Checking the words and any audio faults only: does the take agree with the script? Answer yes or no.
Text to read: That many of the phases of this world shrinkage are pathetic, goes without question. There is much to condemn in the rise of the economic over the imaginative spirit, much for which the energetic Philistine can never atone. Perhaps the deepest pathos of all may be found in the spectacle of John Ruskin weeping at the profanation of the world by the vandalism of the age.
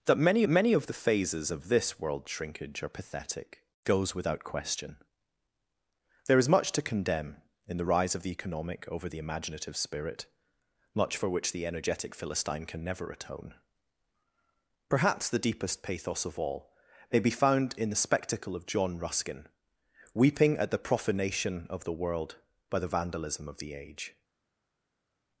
no